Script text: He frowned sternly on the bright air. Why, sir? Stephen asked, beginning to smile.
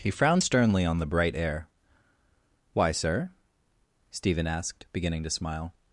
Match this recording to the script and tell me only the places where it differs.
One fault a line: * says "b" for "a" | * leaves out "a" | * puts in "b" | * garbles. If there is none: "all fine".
all fine